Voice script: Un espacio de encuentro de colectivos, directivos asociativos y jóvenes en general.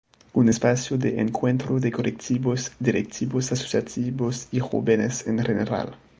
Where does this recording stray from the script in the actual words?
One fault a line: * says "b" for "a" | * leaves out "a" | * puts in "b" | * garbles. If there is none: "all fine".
all fine